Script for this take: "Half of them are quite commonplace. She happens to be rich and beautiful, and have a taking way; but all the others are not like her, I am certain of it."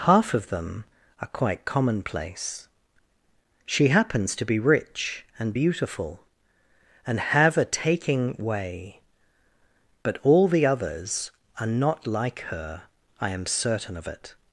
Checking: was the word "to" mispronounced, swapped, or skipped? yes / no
no